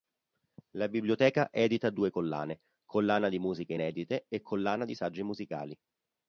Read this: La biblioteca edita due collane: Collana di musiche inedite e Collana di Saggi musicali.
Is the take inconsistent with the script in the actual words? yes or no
no